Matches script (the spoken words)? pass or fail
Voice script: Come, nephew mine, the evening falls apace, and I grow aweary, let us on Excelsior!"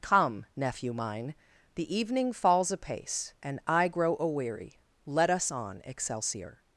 pass